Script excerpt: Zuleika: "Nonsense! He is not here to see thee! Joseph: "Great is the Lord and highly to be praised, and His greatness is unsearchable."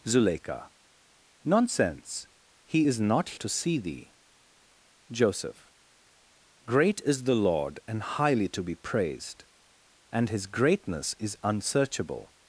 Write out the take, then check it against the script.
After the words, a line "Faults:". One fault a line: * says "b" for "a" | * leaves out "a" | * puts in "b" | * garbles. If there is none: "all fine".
Zuleika: "Nonsense! He is not to see thee! Joseph: "Great is the Lord and highly to be praised, and His greatness is unsearchable."
Faults:
* leaves out "here"